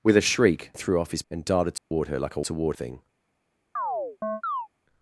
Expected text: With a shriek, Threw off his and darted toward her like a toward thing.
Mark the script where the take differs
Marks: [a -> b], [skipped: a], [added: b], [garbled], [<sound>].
With a shriek, Threw off his and darted toward [dropout] her like a toward thing. [chirp]